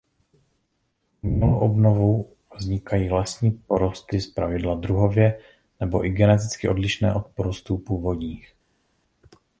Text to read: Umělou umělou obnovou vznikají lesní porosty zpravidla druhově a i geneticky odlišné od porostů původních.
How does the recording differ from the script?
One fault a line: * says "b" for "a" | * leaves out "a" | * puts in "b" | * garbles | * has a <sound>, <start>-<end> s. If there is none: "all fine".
* leaves out "umělou"
* says "nebo" for "a"